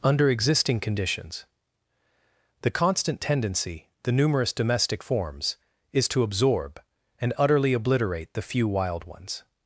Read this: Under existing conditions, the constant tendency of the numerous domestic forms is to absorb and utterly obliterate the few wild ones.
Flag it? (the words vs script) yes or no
yes